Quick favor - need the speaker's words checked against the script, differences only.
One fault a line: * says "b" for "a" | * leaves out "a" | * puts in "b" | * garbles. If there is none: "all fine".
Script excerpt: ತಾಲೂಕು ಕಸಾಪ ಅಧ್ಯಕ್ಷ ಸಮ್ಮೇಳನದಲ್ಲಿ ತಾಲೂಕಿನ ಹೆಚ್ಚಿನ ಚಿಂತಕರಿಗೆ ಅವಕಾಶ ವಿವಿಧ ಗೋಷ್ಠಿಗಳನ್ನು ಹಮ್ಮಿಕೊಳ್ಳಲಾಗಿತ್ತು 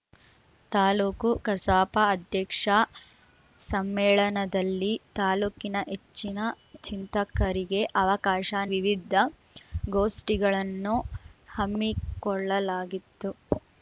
all fine